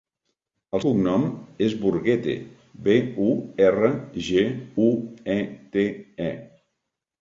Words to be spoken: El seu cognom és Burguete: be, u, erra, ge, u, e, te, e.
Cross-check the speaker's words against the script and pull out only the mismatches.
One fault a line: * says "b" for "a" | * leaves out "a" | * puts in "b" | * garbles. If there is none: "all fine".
* leaves out "seu"